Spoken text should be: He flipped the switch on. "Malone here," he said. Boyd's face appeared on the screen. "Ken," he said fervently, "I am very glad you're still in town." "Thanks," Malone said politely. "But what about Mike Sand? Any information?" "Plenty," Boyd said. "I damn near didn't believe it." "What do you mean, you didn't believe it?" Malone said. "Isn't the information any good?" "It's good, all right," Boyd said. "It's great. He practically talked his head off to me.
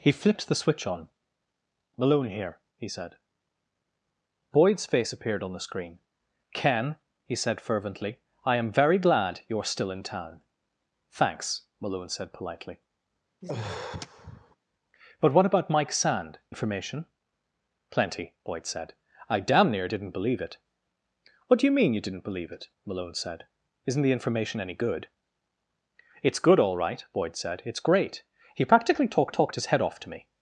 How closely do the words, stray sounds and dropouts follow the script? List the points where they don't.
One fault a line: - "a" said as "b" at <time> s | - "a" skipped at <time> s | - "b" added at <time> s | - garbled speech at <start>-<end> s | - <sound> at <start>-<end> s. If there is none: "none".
- sigh at 13.4-14.6 s
- "Any" skipped at 16.4 s
- "talked" added at 29.3 s